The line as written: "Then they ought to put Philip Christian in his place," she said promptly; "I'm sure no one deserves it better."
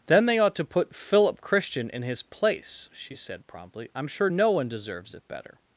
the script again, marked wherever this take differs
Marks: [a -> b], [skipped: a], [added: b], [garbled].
"Then they ought to put Philip Christian in his place," she said promptly; "I'm sure no one deserves it better."